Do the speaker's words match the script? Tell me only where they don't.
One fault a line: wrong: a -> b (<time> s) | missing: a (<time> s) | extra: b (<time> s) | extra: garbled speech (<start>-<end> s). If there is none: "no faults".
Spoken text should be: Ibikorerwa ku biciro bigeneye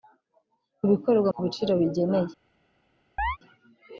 no faults